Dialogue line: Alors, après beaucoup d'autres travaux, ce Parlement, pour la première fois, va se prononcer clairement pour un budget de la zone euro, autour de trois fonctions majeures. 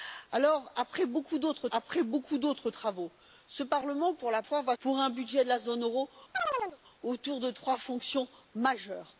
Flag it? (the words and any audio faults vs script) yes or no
yes